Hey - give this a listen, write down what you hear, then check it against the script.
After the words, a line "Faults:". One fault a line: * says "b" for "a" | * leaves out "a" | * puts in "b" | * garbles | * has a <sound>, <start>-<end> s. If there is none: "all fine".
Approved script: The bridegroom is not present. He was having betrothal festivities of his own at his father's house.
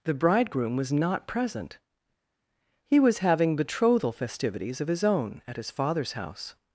The bridegroom was not present. He was having betrothal festivities of his own at his father's house.
Faults:
* says "was" for "is"